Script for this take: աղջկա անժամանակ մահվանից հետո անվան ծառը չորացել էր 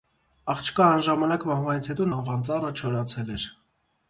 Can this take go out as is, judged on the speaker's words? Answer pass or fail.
pass